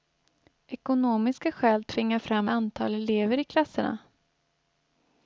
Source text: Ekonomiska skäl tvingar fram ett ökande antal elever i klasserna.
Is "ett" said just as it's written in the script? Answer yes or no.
no